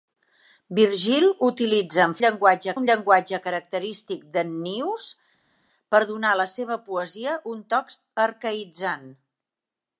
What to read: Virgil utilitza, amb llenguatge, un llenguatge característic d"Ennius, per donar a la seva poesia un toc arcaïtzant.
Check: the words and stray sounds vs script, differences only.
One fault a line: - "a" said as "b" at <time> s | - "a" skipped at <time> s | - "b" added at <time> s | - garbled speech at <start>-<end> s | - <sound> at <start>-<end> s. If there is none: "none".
none